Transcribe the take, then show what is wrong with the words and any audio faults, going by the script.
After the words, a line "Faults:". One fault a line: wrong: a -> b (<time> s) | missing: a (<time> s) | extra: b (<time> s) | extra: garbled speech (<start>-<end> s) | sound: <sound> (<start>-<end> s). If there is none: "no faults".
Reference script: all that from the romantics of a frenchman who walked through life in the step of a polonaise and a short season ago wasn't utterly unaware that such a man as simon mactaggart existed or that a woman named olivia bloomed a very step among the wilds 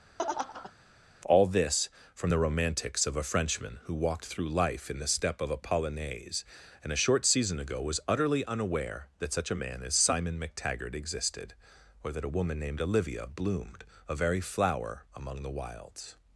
all this from the romantics of a frenchman who walked through life in the step of a polonaise and a short season ago was utterly unaware that such a man as simon mactaggart existed or that a woman named olivia bloomed a very flower among the wilds
Faults:
sound: laugh (0.2-0.7 s)
wrong: that -> this (1.5 s)
wrong: wasn't -> was (7.8 s)
wrong: step -> flower (14.4 s)